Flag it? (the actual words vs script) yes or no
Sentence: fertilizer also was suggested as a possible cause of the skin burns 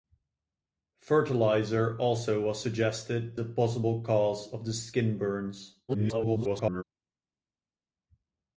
yes